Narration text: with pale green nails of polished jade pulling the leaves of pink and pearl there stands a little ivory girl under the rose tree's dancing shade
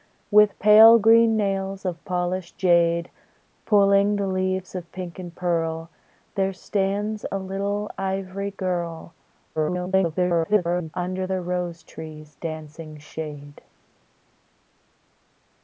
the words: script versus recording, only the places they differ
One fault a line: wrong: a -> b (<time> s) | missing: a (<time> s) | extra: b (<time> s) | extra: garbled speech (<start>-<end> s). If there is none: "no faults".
extra: garbled speech (9.6-10.9 s)